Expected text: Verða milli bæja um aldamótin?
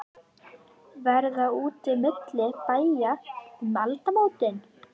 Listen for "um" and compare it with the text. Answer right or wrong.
right